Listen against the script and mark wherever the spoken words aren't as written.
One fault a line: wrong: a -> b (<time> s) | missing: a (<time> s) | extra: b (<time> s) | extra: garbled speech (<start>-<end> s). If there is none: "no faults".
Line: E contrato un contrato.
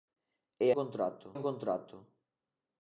no faults